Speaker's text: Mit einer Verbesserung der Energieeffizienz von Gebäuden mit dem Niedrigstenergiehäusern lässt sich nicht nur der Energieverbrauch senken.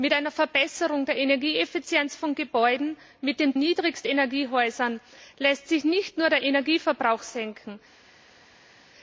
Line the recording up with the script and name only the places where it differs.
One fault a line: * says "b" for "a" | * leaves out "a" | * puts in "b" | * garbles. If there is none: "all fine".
all fine